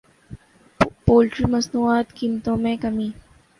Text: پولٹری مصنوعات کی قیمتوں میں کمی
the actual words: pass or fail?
fail